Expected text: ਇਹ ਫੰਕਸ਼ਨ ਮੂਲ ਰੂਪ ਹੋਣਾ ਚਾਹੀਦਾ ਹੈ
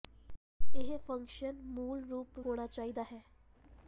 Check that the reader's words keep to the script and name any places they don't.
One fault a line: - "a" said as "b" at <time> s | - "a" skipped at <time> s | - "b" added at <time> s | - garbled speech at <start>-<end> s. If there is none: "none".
none